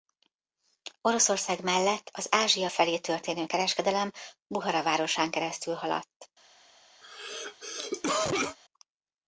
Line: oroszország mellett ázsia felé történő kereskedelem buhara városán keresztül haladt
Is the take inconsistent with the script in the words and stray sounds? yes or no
yes